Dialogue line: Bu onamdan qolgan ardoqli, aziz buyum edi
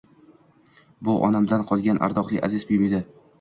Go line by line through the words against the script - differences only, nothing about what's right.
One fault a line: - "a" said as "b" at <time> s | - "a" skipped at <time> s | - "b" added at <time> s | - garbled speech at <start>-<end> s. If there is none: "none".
none